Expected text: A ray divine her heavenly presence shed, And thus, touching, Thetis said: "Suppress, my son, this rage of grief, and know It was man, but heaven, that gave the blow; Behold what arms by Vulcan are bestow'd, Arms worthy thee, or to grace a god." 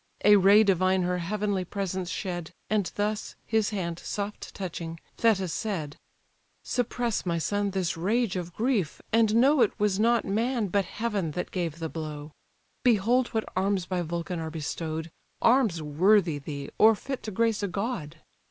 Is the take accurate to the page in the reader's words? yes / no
no